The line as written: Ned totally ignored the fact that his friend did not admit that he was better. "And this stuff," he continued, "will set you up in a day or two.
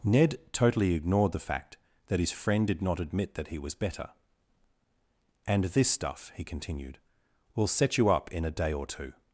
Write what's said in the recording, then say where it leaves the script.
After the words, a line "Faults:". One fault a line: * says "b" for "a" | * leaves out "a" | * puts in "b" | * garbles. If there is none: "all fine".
Ned totally ignored the fact that his friend did not admit that he was better. "And this stuff," he continued, "will set you up in a day or two.
Faults:
all fine